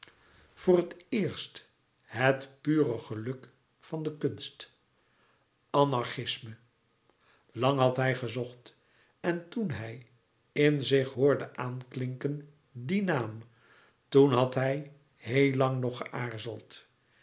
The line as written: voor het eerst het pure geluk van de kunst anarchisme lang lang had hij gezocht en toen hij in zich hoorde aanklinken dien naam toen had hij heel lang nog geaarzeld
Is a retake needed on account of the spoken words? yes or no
yes